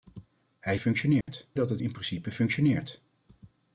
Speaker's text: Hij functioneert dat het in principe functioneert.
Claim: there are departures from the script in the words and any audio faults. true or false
true